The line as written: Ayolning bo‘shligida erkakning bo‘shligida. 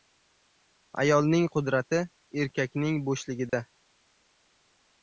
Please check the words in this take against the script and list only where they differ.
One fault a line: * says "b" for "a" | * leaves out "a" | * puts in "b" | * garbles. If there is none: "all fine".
* says "qudrati" for "bo‘shligida"